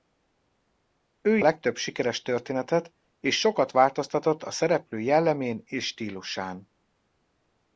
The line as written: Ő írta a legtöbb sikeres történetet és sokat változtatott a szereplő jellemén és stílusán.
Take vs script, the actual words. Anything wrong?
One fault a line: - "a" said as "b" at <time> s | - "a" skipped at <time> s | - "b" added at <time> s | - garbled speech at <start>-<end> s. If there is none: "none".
- "írta" skipped at 1.4 s